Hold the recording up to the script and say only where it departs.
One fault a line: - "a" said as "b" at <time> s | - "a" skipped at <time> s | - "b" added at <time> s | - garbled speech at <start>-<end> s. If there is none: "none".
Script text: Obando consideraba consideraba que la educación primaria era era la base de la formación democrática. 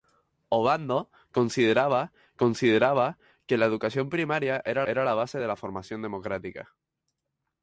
none